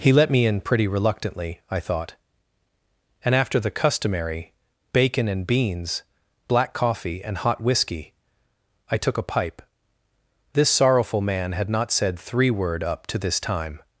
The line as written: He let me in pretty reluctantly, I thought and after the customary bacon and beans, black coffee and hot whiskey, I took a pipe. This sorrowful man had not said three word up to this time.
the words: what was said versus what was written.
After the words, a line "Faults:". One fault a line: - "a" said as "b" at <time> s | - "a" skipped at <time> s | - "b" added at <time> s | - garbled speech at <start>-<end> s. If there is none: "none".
He let me in pretty reluctantly, I thought and after the customary bacon and beans, black coffee and hot whiskey, I took a pipe. This sorrowful man had not said three word up to this time.
Faults:
none